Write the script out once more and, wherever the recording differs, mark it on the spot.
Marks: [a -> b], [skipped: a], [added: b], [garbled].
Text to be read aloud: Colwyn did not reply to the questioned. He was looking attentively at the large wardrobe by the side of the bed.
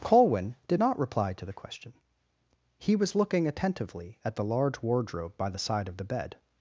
Colwyn did not reply to the [questioned. -> question] He was looking attentively at the large wardrobe by the side of the bed.